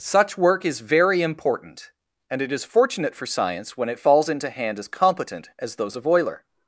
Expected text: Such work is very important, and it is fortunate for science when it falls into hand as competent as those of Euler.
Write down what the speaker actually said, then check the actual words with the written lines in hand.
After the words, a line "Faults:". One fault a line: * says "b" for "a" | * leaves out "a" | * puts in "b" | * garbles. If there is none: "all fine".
Such work is very important, and it is fortunate for science when it falls into hand as competent as those of Euler.
Faults:
all fine